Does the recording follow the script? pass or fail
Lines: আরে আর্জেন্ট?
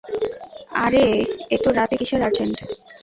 fail